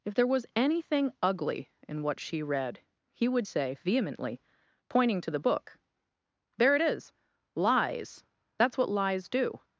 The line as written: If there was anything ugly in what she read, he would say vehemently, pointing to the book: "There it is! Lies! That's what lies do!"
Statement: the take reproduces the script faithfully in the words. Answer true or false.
true